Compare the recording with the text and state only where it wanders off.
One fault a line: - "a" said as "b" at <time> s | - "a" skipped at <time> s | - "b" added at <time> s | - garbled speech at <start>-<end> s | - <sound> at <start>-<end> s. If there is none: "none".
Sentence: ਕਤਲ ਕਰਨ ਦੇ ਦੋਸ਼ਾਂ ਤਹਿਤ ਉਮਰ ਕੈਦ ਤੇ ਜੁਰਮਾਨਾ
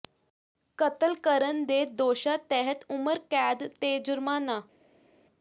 none